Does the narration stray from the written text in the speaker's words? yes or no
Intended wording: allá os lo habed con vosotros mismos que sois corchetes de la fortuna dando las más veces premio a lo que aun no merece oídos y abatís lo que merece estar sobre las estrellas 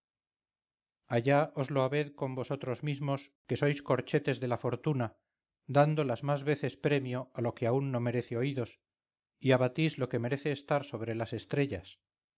no